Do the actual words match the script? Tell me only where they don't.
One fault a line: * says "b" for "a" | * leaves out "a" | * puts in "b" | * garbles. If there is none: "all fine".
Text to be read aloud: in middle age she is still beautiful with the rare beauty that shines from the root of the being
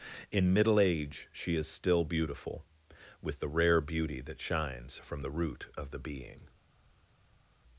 all fine